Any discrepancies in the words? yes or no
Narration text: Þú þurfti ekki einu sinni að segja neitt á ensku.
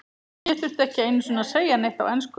yes